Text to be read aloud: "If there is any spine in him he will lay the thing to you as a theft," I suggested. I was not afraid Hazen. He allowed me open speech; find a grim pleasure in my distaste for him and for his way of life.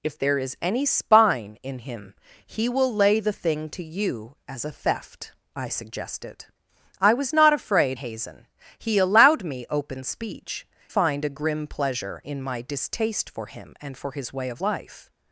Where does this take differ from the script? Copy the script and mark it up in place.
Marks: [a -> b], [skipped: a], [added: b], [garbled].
"If there is any spine in him he will lay the thing to you as a theft," I suggested. I was not afraid Hazen. He allowed me open speech; find a grim pleasure in my distaste for him and for his way of life.